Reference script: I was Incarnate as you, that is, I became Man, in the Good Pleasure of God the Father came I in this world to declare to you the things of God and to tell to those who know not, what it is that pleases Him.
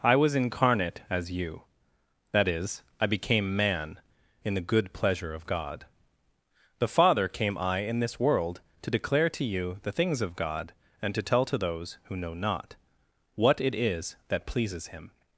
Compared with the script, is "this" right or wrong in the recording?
right